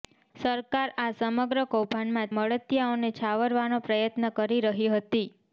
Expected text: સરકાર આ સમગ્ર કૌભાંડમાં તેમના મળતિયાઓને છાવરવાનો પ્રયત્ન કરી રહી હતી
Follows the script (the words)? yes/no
no